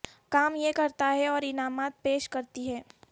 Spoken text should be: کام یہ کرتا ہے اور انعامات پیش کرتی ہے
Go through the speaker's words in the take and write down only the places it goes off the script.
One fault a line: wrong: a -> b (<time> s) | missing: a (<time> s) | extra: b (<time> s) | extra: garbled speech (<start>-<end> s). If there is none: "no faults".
no faults